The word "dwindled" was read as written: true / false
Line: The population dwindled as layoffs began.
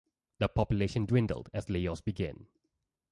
true